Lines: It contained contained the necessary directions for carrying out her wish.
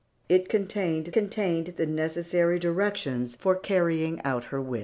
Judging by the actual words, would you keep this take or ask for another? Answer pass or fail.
pass